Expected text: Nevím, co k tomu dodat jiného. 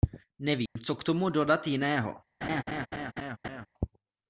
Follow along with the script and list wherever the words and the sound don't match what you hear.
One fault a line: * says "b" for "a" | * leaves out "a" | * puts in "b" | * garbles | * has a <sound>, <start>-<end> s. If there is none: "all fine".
* has a dropout, 0.7-0.8 s
* has a laugh, 2.4-3.7 s